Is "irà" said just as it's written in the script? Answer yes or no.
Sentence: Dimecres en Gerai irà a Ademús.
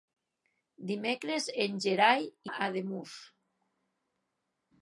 no